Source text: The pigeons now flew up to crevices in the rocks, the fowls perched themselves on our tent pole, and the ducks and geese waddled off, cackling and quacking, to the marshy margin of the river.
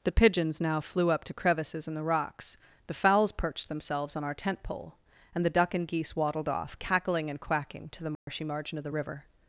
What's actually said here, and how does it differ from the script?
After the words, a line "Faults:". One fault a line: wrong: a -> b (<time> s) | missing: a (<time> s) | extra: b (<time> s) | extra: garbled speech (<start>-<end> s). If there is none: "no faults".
The pigeons now flew up to crevices in the rocks, the fowls perched themselves on our tent pole, and the duck and geese waddled off, cackling and quacking, to the marshy margin of the river.
Faults:
wrong: ducks -> duck (5.5 s)